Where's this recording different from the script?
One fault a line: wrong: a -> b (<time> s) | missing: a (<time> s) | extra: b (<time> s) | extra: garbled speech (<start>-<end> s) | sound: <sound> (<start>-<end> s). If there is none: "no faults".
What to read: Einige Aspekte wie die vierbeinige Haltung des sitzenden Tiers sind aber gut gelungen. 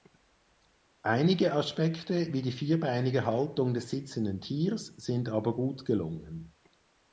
no faults